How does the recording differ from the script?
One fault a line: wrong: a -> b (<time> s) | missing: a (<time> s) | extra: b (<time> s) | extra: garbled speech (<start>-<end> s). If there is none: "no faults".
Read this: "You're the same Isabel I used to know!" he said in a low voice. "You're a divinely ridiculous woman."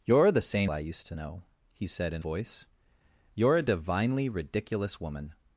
missing: Isabel (0.7 s)
missing: a low (2.2 s)